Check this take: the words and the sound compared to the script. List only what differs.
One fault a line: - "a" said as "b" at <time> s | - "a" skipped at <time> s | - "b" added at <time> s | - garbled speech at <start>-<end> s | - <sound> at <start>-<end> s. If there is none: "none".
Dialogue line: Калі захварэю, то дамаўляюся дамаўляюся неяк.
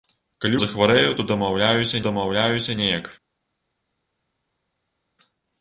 none